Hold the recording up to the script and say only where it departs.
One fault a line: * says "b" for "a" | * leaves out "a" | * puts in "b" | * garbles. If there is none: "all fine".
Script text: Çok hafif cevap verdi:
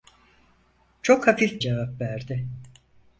all fine